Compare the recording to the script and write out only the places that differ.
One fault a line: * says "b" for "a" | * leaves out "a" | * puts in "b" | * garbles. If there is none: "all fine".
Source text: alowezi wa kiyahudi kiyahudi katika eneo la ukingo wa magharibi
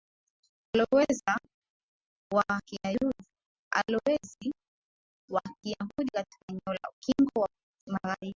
* leaves out "kiyahudi"